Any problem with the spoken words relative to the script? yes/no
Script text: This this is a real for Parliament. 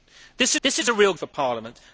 no